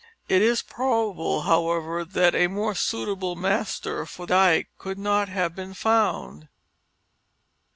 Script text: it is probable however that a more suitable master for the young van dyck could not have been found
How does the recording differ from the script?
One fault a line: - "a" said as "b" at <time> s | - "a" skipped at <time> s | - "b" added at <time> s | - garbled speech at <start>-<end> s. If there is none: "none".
- "the young van" skipped at 4.2 s